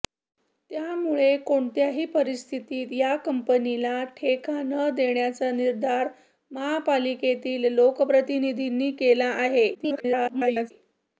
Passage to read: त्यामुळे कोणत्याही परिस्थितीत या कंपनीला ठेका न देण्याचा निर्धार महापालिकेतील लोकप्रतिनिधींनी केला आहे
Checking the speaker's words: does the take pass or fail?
fail